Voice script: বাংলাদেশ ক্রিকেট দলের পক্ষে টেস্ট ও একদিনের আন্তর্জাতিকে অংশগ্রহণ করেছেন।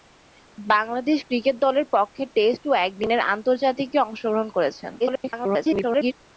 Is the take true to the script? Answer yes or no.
no